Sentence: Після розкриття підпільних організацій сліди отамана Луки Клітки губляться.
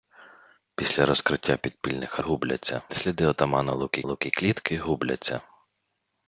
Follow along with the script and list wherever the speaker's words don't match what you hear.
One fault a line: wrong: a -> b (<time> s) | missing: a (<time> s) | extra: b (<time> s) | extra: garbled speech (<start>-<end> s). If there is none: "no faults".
wrong: організацій -> губляться (2.2 s)
extra: Луки (4.0 s)